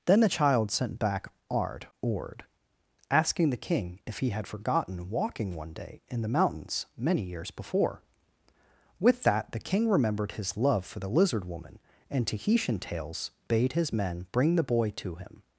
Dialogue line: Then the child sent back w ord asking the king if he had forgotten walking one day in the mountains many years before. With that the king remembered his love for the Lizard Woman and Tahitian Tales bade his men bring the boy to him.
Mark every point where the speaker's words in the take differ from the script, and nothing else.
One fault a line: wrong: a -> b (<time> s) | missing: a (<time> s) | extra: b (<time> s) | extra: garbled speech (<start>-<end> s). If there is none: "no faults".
wrong: w -> ard (1.5 s)